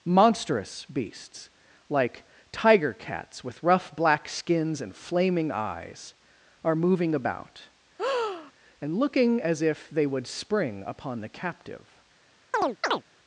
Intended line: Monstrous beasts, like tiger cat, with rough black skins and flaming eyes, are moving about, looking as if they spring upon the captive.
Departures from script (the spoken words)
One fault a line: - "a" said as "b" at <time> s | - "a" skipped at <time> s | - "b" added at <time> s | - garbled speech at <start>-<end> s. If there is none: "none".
- "cat" said as "cats" at 2.9 s
- "and" added at 8.8 s
- "would" added at 10.1 s